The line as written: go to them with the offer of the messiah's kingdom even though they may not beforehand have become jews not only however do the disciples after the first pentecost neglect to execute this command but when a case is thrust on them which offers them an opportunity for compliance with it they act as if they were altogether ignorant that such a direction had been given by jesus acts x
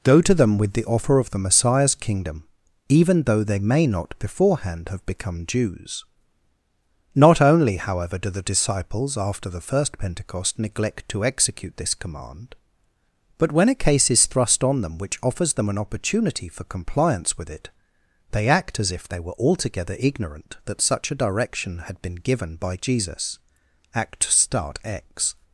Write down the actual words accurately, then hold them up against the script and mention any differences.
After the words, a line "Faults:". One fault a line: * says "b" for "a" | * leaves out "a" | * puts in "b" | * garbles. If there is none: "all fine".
go to them with the offer of the messiah's kingdom even though they may not beforehand have become jews not only however do the disciples after the first pentecost neglect to execute this command but when a case is thrust on them which offers them an opportunity for compliance with it they act as if they were altogether ignorant that such a direction had been given by jesus act start x
Faults:
* says "act start" for "acts"